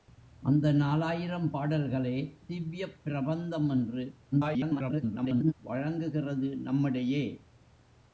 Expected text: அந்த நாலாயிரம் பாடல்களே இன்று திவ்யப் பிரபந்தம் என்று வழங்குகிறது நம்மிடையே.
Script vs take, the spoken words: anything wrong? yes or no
yes